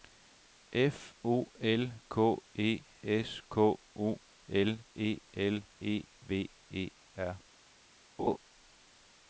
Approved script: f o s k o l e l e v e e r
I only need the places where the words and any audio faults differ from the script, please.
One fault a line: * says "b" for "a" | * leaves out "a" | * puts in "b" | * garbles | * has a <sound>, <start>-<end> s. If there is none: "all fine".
* puts in "l k e"
* leaves out "e"
* has a laugh, 8.2-8.4 s